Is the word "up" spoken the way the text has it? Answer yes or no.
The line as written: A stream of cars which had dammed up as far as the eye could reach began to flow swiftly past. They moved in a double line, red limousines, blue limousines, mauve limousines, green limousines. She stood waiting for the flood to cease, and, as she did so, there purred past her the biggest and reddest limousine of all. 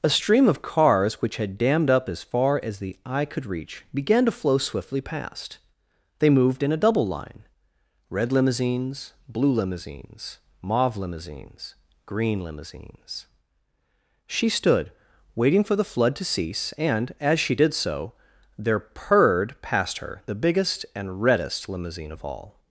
yes